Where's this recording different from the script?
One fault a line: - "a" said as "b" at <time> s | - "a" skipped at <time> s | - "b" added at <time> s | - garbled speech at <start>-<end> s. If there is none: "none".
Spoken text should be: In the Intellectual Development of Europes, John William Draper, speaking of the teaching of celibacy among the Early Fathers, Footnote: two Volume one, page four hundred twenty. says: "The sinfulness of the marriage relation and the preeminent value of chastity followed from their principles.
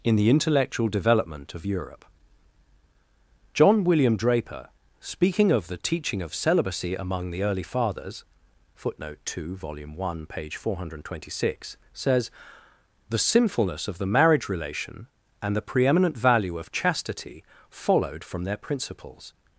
- "Europes" said as "Europe" at 1.7 s
- "six" added at 11.5 s